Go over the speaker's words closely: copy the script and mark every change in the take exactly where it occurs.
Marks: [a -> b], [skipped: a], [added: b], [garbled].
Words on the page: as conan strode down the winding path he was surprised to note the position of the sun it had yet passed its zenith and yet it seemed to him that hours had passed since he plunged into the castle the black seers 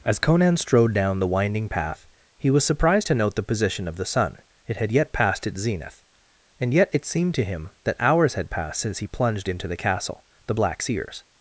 as conan strode down the winding path he was surprised to note the position of the sun it had yet passed its zenith and yet it seemed to him that hours had passed since he plunged into the castle the black seers